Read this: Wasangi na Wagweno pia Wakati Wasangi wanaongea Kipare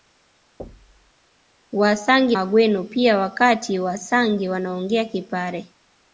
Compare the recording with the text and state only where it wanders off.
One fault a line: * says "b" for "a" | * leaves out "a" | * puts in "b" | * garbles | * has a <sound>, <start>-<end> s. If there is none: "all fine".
* has a thud, 0.6-1.1 s
* leaves out "na"